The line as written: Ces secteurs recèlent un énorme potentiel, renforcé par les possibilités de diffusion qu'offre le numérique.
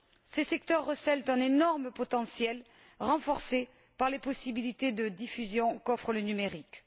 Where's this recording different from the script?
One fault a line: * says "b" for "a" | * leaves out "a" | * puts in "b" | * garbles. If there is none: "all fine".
all fine